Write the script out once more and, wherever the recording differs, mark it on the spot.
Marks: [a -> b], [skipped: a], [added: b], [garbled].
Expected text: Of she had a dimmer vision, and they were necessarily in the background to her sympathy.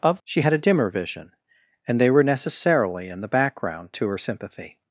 Of she had a dimmer vision, and they were necessarily in the background to her sympathy.